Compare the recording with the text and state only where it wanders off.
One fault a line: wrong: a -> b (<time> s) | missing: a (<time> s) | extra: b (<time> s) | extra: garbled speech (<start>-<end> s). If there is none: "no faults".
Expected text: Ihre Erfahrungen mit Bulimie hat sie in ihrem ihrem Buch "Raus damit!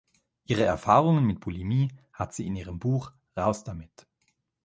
missing: ihrem (2.8 s)